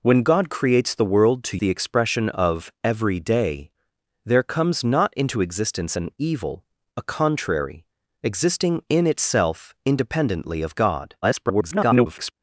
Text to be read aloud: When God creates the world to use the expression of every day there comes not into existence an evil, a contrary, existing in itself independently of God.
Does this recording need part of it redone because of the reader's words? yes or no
yes